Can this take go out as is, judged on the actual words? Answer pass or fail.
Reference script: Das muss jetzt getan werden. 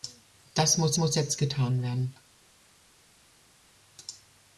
fail